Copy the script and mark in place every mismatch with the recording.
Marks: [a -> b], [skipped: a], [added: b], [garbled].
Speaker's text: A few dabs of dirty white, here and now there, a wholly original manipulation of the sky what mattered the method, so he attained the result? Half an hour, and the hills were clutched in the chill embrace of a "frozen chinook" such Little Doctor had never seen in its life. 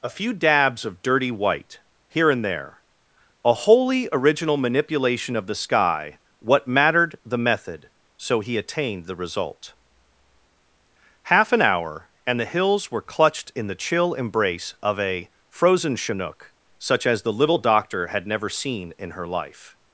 A few dabs of dirty white, here and [skipped: now] there, a wholly original manipulation of the sky what mattered the method, so he attained the result? Half an hour, and the hills were clutched in the chill embrace of a "frozen chinook" such [added: as the] Little Doctor had never seen in [its -> her] life.